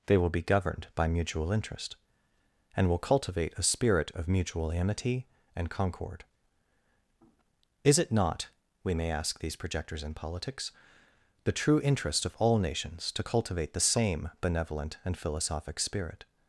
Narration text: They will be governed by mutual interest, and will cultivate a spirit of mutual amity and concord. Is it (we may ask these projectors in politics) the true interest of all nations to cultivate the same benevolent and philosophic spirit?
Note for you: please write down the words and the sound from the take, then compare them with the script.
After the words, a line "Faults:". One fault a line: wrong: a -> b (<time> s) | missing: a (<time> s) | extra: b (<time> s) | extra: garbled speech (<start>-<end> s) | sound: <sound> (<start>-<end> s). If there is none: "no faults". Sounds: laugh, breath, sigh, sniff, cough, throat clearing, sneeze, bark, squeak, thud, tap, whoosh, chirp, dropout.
They will be governed by mutual interest, and will cultivate a spirit of mutual amity and concord. Is it not (we may ask these projectors in politics) the true interest of all nations to cultivate the same benevolent and philosophic spirit?
Faults:
extra: not (8.1 s)